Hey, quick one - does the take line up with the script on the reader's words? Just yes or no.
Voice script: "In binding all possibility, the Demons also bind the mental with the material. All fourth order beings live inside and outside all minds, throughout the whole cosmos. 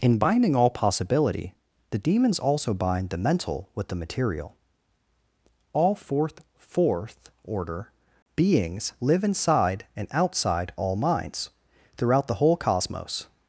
no